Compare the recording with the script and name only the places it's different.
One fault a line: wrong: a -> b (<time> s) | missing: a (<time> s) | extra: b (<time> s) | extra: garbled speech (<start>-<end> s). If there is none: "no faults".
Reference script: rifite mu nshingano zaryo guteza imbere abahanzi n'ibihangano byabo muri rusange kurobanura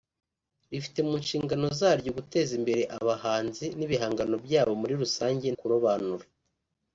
no faults